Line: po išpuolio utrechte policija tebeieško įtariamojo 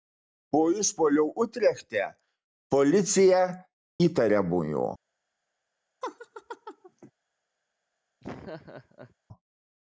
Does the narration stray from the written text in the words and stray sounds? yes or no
yes